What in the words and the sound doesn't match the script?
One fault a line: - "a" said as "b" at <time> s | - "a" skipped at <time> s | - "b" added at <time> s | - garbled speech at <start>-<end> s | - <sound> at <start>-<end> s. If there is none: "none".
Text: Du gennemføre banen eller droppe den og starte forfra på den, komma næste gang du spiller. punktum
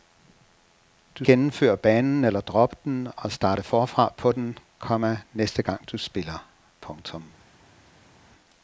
none